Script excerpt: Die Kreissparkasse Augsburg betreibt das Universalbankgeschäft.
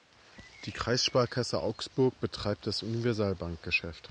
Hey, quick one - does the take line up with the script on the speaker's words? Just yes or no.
yes